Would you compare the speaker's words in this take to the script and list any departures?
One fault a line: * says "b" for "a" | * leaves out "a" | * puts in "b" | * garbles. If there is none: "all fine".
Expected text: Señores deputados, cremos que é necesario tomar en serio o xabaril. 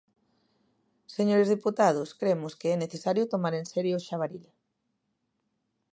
all fine